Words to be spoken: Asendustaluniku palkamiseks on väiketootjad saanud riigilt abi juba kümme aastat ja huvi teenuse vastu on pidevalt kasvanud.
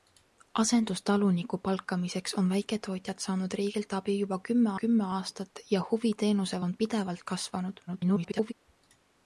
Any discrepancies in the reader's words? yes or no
yes